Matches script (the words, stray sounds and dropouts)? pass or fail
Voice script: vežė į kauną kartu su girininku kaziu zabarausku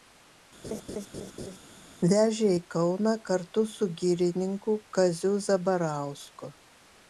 fail